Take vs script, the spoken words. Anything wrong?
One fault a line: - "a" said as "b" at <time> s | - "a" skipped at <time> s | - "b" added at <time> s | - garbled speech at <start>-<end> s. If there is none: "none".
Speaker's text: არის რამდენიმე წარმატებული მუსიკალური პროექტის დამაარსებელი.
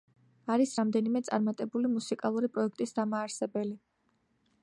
none